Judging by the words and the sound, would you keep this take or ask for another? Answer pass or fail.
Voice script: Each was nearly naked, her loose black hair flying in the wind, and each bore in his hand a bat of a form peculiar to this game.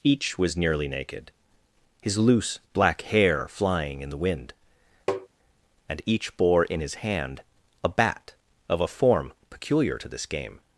fail